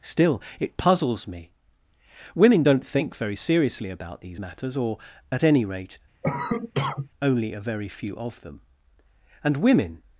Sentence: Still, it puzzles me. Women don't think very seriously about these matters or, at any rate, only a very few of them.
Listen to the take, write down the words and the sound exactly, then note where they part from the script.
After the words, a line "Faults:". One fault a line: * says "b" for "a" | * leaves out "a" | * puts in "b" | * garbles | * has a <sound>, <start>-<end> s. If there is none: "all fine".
Still, it puzzles me. Women don't think very seriously about these matters or, at any rate, only a very few of them. And women
Faults:
* has a cough, 6.2-7.1 s
* puts in "And women"